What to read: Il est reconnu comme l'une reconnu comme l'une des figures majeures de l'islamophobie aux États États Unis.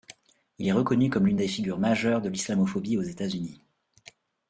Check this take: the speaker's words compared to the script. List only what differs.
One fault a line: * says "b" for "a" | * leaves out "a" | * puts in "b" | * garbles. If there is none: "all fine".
* leaves out "reconnu comme l'une"
* leaves out "États"